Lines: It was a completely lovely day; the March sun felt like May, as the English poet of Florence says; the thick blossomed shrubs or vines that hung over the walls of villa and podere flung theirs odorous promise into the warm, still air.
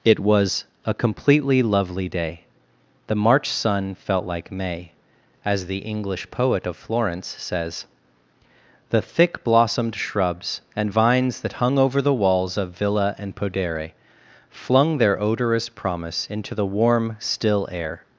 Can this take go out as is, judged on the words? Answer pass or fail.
fail